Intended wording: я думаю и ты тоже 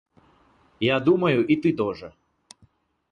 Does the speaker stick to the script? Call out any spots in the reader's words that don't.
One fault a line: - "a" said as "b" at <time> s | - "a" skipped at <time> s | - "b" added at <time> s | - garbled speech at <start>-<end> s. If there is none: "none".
none